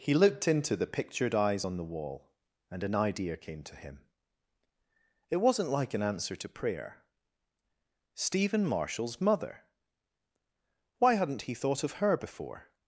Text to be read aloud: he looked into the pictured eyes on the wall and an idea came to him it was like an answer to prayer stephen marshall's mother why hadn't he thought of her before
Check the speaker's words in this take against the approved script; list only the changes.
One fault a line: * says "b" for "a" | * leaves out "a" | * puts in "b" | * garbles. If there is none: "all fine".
* says "wasn't" for "was"